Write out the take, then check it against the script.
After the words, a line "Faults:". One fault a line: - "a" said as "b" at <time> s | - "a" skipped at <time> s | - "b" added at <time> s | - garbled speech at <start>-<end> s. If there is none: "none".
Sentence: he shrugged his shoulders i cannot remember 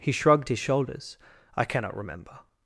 he shrugged his shoulders i cannot remember
Faults:
none